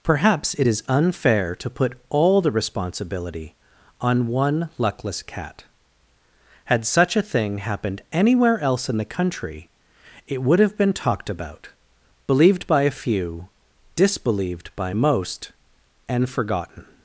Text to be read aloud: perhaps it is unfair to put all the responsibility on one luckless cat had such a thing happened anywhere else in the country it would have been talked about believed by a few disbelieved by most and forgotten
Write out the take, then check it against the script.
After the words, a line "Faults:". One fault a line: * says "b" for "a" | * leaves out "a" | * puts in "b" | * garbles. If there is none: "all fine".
perhaps it is unfair to put all the responsibility on one luckless cat had such a thing happened anywhere else in the country it would have been talked about believed by a few disbelieved by most and forgotten
Faults:
all fine